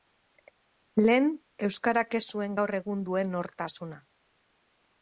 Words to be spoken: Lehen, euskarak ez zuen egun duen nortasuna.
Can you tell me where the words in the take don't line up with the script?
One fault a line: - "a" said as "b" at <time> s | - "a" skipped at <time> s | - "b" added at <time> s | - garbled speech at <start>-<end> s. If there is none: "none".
- "gaur" added at 2.6 s